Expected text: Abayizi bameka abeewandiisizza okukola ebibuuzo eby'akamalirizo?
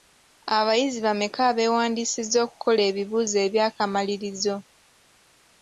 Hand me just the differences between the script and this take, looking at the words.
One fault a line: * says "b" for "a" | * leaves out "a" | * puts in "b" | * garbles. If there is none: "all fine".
all fine